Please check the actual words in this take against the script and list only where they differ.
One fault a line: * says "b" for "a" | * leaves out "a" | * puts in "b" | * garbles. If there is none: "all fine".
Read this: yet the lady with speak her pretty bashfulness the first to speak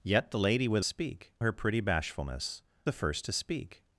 all fine